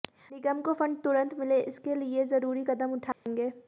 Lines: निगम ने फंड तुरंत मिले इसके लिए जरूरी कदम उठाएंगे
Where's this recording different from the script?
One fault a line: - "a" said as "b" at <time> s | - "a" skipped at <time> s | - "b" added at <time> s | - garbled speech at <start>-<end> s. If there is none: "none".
- "ने" said as "को" at 0.6 s